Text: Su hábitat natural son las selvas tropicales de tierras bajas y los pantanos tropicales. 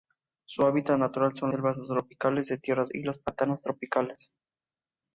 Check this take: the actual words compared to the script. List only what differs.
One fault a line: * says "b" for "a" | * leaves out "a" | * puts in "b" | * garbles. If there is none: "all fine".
* leaves out "las"
* leaves out "bajas"